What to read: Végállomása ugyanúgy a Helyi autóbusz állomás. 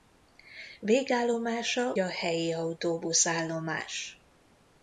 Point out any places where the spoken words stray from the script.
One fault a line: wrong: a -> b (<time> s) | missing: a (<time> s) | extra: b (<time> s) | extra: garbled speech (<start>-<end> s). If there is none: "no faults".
missing: ugyanúgy (1.9 s)